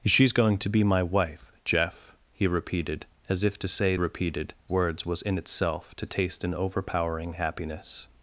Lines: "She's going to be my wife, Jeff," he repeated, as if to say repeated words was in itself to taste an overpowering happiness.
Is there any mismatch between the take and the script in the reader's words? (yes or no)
no